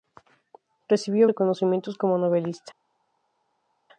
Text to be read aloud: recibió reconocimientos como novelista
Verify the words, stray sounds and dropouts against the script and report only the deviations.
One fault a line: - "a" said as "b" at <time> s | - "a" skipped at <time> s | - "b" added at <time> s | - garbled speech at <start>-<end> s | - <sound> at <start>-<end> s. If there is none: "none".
none